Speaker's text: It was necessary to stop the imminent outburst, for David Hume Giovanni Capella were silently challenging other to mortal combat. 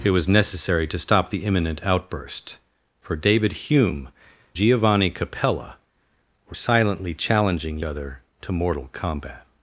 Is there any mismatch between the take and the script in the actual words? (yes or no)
no